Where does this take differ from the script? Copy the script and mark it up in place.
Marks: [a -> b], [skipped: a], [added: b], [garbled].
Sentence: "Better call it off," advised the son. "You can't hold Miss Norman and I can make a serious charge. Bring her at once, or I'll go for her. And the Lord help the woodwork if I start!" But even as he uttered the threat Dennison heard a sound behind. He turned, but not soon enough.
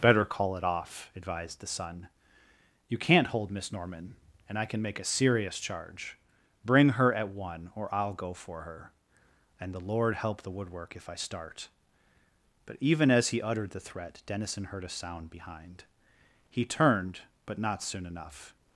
"Better call it off," advised the son. "You can't hold Miss Norman and I can make a serious charge. Bring her at [once, -> one] or I'll go for her. And the Lord help the woodwork if I start!" But even as he uttered the threat Dennison heard a sound behind. He turned, but not soon enough.